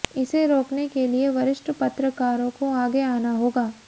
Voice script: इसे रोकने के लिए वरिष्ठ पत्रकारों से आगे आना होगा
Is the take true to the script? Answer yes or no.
no